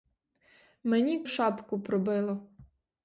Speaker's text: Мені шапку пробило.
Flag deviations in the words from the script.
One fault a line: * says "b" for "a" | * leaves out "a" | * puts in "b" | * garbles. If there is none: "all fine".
all fine